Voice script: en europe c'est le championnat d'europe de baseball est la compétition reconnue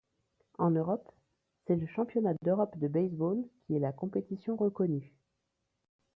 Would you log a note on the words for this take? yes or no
yes